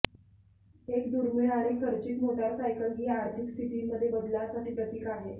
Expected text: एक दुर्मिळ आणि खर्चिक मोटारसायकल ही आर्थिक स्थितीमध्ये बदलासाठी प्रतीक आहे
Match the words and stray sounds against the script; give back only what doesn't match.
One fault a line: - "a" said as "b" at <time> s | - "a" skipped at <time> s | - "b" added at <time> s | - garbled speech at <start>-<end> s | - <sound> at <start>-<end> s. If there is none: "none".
none